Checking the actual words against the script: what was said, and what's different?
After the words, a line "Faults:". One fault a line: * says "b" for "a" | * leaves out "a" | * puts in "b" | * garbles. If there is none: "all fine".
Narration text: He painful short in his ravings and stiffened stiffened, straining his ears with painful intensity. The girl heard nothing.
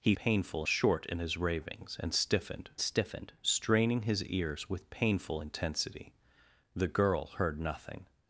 He painful short in his ravings and stiffened stiffened, straining his ears with painful intensity. The girl heard nothing.
Faults:
all fine